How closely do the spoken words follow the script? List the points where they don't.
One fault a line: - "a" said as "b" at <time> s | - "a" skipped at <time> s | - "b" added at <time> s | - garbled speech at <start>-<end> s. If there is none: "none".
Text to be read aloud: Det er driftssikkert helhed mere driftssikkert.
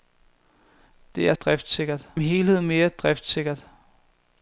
none